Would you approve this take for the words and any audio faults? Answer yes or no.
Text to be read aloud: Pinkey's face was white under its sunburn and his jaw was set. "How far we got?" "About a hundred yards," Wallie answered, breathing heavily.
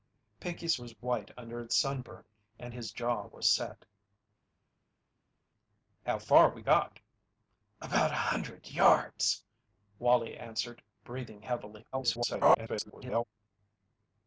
no